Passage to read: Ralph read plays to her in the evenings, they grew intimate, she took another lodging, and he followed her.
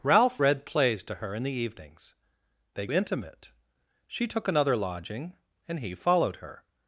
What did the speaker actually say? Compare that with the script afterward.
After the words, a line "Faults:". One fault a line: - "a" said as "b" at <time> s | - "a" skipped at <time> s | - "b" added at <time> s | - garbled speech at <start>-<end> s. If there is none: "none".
Ralph read plays to her in the evenings, they intimate, she took another lodging, and he followed her.
Faults:
- "grew" skipped at 2.9 s